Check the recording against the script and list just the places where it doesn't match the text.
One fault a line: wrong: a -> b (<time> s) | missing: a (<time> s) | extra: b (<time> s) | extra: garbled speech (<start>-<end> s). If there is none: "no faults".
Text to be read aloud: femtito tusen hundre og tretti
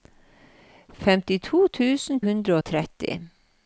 no faults